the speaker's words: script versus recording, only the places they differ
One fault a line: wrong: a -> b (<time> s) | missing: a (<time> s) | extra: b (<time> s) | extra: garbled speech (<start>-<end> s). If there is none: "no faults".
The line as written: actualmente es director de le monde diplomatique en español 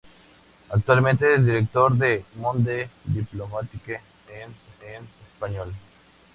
missing: le (2.2 s)
extra: en (4.8 s)